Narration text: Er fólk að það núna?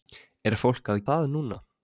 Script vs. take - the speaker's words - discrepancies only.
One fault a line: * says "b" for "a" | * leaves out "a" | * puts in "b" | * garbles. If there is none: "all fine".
all fine